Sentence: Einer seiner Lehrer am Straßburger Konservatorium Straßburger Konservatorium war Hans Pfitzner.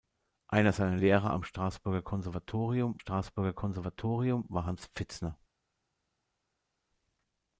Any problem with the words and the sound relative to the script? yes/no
no